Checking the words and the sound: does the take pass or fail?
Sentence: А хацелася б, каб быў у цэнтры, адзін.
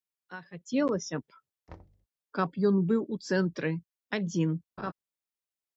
fail